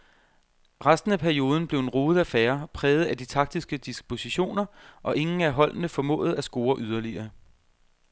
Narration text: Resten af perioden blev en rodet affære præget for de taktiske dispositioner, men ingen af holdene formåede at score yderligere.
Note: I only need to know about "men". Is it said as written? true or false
false